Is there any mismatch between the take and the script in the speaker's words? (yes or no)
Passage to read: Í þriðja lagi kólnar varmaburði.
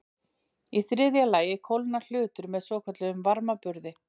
yes